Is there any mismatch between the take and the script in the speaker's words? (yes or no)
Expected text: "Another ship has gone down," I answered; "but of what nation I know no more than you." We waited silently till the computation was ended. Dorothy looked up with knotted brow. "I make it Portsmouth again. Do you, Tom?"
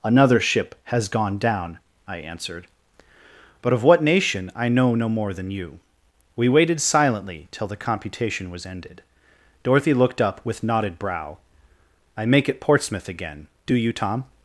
no